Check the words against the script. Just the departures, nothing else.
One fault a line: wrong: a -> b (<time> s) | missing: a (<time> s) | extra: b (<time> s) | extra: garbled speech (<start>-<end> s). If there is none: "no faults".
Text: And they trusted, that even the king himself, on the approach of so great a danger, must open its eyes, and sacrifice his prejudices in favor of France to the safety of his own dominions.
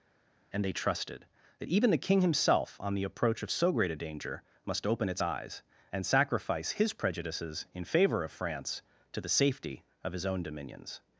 no faults